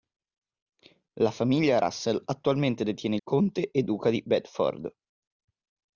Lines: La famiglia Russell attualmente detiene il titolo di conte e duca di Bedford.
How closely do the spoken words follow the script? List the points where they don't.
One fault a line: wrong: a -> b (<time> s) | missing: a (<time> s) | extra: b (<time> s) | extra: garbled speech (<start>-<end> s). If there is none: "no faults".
missing: il titolo di (3.1 s)